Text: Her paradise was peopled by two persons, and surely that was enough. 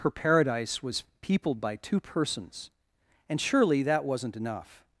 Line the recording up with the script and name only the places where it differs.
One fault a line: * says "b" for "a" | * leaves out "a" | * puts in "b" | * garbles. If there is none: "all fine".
* says "wasn't" for "was"